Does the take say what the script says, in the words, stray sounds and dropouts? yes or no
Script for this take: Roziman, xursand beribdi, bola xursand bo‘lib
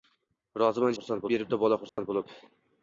no